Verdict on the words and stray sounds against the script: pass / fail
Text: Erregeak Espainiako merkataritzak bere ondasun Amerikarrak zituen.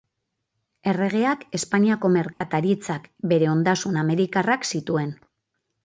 fail